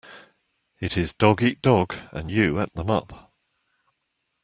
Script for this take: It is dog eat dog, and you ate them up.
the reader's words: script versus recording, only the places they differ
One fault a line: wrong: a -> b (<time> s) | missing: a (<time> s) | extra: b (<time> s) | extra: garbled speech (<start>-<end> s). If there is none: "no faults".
no faults